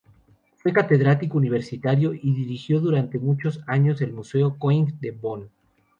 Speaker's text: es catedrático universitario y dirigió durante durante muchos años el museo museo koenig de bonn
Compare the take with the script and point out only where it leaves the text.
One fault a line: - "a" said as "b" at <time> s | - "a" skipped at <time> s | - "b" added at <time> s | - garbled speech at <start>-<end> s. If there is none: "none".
- "es" said as "fue" at 0.6 s
- "durante" skipped at 3.2 s
- "museo" skipped at 4.6 s